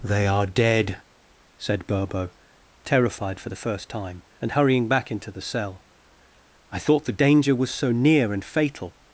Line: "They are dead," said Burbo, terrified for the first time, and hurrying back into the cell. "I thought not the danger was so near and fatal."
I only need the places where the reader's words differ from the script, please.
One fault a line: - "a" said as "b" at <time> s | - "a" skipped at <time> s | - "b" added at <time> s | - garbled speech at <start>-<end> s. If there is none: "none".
- "not" skipped at 7.1 s